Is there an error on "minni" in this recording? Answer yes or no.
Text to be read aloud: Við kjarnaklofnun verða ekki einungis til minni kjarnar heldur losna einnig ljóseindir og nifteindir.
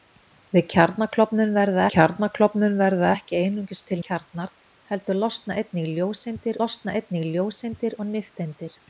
yes